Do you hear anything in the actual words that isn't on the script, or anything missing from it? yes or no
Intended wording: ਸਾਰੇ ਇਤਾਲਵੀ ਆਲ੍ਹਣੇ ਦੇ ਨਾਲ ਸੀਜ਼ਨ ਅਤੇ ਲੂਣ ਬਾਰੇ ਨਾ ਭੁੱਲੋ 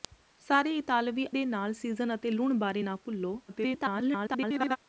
yes